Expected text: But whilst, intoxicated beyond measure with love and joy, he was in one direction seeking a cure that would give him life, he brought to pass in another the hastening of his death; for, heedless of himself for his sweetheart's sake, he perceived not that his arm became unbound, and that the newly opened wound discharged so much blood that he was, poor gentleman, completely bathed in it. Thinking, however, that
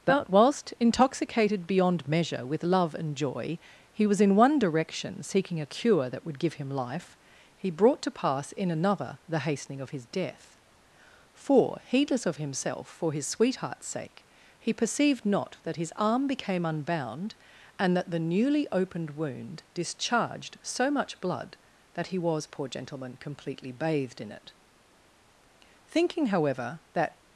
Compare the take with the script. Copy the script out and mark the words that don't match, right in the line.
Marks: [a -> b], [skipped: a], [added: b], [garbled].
But whilst, intoxicated beyond measure with love and joy, he was in one direction seeking a cure that would give him life, he brought to pass in another the hastening of his death; for, heedless of himself for his sweetheart's sake, he perceived not that his arm became unbound, and that the newly opened wound discharged so much blood that he was, poor gentleman, completely bathed in it. Thinking, however, that